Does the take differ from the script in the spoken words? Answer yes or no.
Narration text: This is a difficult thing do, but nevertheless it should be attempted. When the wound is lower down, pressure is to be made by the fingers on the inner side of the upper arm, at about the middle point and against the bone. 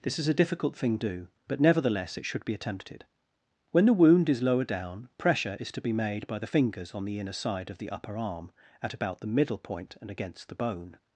no